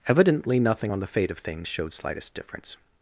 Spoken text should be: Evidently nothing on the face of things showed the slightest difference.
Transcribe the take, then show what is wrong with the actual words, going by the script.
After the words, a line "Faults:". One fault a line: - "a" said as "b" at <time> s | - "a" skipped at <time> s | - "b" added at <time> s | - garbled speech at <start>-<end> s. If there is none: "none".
Evidently nothing on the fate of things showed slightest difference.
Faults:
- "face" said as "fate" at 1.1 s
- "the" skipped at 1.9 s